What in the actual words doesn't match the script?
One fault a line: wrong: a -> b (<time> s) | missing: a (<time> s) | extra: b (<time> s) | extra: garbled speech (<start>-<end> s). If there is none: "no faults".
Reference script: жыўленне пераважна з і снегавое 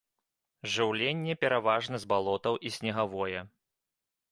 extra: балотаў (2.2 s)